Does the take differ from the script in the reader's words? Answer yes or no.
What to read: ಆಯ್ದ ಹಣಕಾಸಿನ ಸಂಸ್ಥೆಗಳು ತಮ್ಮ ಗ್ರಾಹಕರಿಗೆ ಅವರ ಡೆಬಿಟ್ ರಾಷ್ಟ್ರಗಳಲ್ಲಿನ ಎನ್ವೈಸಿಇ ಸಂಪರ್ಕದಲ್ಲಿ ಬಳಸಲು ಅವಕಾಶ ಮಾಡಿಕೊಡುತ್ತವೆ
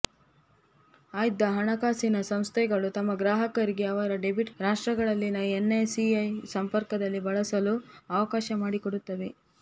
no